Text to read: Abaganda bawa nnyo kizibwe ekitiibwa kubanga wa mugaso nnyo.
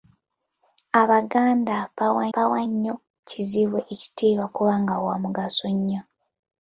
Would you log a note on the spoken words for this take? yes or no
yes